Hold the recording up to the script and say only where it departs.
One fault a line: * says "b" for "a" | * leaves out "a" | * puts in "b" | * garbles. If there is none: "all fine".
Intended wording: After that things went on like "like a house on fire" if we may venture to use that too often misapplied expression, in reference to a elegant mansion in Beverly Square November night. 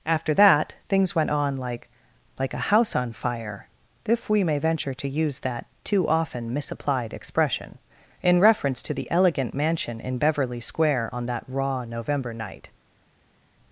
* says "the" for "a"
* puts in "on that raw"